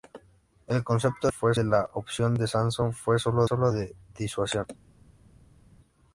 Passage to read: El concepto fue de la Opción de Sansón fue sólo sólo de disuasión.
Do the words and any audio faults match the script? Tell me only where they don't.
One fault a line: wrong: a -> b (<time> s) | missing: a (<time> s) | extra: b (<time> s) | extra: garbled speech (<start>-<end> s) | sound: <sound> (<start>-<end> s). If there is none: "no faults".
no faults